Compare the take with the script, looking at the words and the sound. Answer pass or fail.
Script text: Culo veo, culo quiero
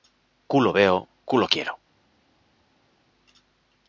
pass